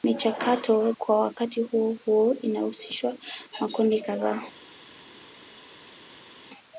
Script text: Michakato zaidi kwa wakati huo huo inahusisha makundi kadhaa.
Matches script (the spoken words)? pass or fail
fail